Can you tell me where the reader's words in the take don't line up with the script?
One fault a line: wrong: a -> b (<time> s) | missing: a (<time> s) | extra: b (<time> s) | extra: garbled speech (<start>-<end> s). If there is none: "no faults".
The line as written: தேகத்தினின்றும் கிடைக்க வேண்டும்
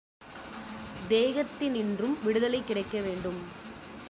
extra: விடுதலை (2.2 s)